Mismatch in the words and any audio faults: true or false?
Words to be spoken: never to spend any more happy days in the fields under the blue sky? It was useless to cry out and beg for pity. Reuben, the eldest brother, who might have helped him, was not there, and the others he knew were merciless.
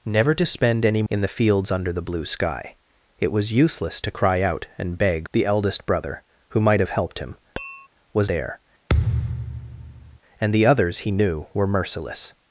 true